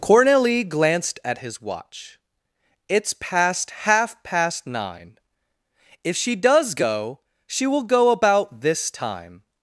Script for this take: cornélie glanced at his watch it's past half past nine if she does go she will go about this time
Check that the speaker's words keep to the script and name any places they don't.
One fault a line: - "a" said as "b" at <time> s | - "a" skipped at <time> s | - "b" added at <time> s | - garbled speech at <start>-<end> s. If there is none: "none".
none